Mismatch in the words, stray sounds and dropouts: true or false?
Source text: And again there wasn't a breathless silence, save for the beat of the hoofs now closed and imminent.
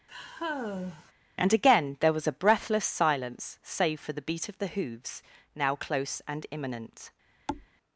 true